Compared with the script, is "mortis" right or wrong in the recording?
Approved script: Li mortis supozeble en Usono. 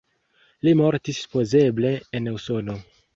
right